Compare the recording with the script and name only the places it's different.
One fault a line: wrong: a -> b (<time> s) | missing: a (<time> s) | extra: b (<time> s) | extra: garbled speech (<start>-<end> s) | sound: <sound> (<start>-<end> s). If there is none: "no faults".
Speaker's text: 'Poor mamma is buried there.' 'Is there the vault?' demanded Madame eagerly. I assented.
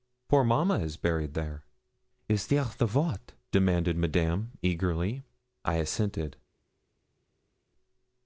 no faults